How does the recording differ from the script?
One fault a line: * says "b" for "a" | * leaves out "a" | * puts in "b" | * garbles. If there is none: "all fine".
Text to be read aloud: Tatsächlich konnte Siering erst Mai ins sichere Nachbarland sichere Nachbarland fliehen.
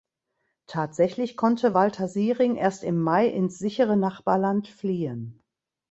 * puts in "Walter"
* puts in "im"
* leaves out "sichere Nachbarland"